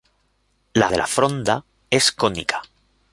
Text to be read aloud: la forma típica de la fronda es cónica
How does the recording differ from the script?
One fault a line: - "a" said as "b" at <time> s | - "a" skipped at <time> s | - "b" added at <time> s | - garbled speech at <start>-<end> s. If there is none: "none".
- "forma típica" skipped at 0.9 s